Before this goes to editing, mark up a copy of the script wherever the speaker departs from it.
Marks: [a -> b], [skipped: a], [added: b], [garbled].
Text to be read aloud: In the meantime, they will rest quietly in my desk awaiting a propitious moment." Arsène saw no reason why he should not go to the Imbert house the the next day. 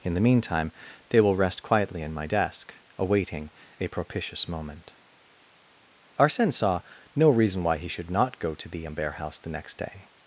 In the meantime, they will rest quietly in my desk awaiting a propitious moment." Arsène saw no reason why he should not go to the Imbert house the [skipped: the] next day.